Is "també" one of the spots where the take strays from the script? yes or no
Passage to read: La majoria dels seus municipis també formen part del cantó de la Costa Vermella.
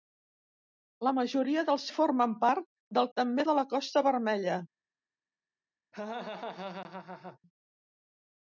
yes